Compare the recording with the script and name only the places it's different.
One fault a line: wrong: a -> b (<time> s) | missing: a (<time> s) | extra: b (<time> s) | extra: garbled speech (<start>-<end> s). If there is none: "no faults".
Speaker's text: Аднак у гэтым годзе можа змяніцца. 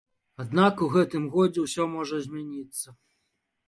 extra: ўсё (1.7 s)